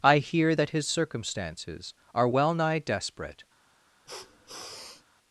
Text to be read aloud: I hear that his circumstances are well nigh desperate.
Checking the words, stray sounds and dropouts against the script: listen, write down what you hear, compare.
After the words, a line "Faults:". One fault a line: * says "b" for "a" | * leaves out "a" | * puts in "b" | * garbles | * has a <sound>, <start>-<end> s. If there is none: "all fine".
I hear that his circumstances are well nigh desperate.
Faults:
* has a sniff, 4.1-5.0 s